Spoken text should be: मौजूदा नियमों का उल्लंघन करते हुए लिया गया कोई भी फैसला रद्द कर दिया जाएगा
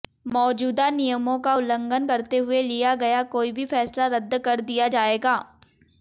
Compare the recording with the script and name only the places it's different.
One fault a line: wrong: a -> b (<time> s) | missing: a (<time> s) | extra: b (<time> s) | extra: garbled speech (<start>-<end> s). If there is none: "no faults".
no faults